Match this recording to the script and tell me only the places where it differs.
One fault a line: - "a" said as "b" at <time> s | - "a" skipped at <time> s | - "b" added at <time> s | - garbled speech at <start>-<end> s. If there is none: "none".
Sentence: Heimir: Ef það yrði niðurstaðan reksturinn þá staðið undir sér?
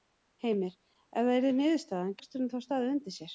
none